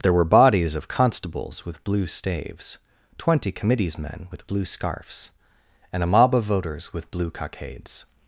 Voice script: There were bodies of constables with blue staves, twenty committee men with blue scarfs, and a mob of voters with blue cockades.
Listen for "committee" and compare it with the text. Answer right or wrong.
wrong